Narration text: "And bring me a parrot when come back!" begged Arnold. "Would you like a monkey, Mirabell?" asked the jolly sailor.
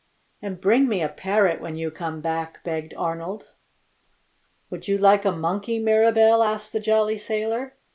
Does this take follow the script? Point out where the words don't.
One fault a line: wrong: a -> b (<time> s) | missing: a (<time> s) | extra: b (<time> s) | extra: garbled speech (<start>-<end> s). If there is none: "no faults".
extra: you (1.8 s)